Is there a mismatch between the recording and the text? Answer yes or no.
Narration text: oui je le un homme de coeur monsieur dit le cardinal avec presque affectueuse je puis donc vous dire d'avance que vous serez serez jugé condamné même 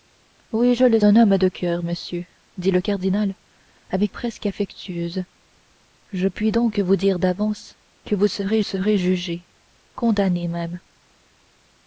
no